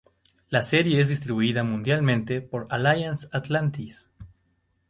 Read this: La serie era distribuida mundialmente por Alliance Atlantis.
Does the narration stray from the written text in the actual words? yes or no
yes